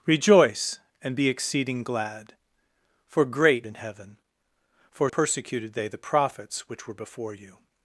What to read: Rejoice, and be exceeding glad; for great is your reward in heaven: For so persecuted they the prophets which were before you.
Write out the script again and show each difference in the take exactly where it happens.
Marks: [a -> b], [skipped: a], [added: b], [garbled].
Rejoice, and be exceeding glad; for great [skipped: is your reward] in heaven: For [skipped: so] persecuted they the prophets which were before you.